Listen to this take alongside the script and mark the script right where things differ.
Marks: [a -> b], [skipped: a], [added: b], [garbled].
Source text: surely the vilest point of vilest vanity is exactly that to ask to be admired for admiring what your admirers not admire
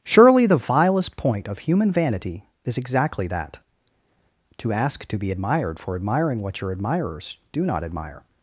surely the vilest point of [vilest -> human] vanity is exactly that to ask to be admired for admiring what your admirers [added: do] not admire